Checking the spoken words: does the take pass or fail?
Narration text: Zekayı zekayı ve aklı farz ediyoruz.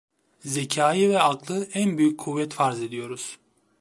fail